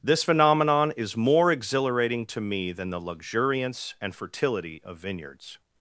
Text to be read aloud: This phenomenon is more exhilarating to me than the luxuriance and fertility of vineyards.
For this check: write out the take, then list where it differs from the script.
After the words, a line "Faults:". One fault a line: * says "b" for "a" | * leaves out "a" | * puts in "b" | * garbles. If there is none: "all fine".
This phenomenon is more exhilarating to me than the luxuriance and fertility of vineyards.
Faults:
all fine